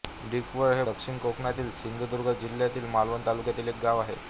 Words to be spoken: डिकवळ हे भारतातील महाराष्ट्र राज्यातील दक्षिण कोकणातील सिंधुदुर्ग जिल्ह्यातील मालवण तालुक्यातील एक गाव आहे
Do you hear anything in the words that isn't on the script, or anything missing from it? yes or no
yes